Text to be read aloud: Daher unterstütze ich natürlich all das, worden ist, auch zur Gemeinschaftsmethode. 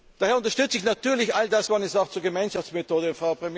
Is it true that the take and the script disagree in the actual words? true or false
false